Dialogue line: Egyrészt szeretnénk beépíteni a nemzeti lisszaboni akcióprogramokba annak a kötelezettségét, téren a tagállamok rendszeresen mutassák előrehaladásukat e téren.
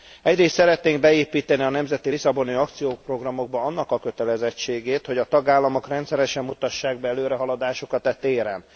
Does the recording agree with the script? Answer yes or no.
no